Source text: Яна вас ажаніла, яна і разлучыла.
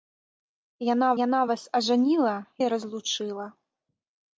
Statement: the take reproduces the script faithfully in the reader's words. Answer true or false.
false